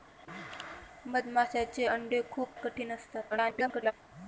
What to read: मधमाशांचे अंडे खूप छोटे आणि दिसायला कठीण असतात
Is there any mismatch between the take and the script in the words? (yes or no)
yes